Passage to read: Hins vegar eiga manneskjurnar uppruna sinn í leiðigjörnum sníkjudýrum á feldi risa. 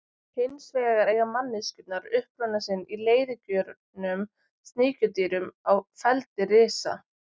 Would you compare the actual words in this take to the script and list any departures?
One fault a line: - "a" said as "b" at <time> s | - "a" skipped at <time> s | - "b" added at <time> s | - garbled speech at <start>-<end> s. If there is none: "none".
none